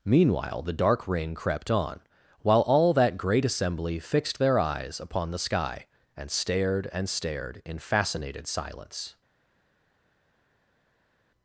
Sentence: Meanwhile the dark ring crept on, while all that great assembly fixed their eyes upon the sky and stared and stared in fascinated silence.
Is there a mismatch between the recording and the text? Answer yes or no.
no